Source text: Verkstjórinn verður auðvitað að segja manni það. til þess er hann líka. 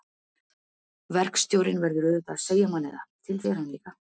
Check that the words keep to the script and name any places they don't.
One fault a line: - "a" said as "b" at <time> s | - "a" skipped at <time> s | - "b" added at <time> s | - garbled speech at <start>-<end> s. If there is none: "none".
- "þess" skipped at 3.4 s